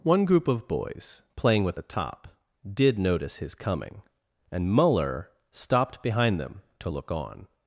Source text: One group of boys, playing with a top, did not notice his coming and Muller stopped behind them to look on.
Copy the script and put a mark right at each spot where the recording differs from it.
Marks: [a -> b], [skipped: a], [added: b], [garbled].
One group of boys, playing with a top, did [skipped: not] notice his coming and Muller stopped behind them to look on.